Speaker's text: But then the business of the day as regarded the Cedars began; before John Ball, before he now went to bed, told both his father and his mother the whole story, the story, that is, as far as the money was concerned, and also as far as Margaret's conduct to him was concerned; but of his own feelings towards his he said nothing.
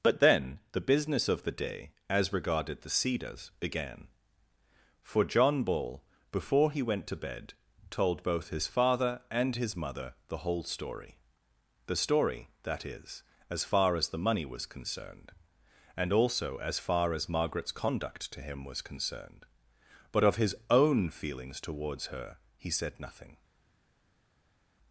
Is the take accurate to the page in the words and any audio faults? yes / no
no